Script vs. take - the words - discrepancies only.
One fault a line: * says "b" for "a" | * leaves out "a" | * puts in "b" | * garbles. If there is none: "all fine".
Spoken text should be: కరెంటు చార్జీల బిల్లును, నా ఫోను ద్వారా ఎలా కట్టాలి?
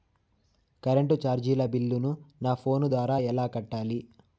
all fine